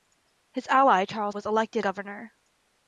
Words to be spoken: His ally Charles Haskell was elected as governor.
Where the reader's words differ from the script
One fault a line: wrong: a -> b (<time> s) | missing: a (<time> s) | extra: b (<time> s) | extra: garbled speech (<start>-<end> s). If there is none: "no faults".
missing: Haskell (1.4 s)
missing: as (1.9 s)